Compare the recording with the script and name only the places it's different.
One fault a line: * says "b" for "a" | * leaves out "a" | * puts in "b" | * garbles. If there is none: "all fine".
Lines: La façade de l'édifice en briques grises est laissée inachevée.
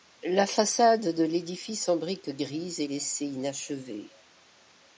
all fine